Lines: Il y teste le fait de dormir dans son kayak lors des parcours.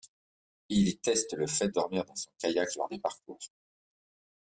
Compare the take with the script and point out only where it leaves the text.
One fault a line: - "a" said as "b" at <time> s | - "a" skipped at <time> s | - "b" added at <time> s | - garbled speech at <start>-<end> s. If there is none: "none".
- "de" skipped at 1.7 s